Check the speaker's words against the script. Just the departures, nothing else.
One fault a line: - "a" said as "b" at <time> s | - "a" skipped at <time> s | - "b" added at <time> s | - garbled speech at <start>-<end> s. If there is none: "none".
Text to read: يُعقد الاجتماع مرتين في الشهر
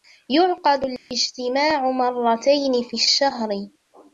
none